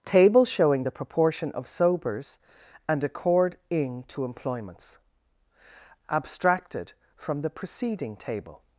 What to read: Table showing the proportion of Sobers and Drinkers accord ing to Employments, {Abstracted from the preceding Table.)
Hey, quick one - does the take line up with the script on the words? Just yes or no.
no